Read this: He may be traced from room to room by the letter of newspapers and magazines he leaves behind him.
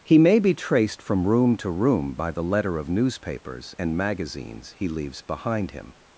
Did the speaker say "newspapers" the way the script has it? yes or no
yes